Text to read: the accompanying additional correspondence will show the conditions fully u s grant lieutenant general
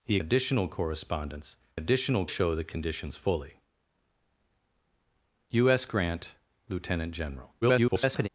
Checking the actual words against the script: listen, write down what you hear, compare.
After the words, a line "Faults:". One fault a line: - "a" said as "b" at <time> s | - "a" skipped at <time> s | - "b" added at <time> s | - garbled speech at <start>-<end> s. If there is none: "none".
the additional correspondence additional show the conditions fully u s grant lieutenant general [garbled]
Faults:
- "accompanying" skipped at 0.2 s
- "will" said as "additional" at 1.8 s
- garbled speech at 7.6-8.3 s